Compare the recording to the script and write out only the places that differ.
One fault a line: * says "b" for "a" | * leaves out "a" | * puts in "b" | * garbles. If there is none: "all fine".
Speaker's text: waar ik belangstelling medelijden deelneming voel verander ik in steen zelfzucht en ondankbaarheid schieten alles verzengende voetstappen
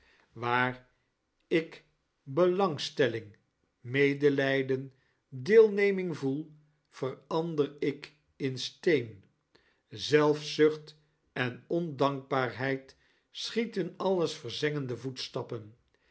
all fine